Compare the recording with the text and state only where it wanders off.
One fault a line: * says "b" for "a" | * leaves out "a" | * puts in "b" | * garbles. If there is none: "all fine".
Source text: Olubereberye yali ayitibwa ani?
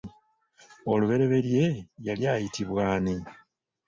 all fine